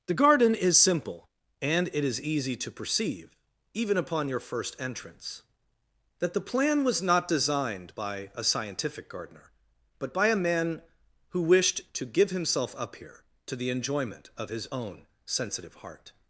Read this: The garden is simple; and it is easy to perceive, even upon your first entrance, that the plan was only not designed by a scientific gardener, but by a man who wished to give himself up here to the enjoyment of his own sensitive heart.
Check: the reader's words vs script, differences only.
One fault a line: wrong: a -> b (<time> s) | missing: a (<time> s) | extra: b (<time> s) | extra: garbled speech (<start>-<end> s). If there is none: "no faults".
missing: only (7.0 s)